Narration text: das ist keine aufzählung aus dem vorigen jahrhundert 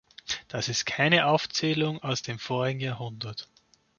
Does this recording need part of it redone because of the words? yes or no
no